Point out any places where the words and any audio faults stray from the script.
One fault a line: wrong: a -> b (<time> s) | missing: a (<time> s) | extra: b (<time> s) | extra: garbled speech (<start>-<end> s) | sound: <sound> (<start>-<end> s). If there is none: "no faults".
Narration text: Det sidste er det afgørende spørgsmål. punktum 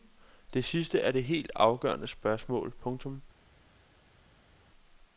extra: helt (1.2 s)